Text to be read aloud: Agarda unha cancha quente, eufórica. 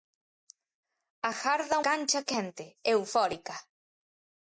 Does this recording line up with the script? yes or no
no